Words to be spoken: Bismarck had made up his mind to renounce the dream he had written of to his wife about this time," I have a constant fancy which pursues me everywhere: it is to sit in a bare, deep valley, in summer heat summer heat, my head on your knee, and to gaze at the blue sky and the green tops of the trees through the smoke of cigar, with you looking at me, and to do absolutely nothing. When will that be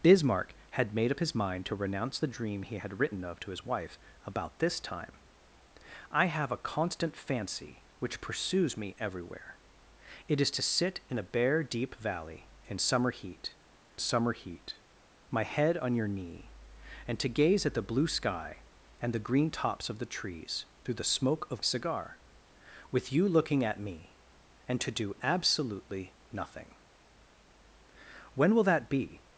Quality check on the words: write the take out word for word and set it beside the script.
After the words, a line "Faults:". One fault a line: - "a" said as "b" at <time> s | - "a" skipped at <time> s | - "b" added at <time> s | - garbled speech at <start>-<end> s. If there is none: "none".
Bismarck had made up his mind to renounce the dream he had written of to his wife about this time," I have a constant fancy which pursues me everywhere: it is to sit in a bare, deep valley, in summer heat summer heat, my head on your knee, and to gaze at the blue sky and the green tops of the trees through the smoke of cigar, with you looking at me, and to do absolutely nothing. When will that be
Faults:
none